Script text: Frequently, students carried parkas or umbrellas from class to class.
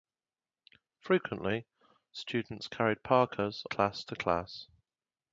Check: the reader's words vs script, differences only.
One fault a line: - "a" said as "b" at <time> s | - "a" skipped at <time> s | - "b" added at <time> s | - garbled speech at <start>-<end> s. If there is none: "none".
- "or umbrellas from" skipped at 3.6 s